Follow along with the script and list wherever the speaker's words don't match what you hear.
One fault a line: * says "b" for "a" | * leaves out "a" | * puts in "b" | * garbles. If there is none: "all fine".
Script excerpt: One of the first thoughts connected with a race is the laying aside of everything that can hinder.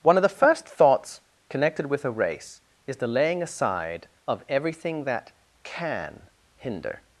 all fine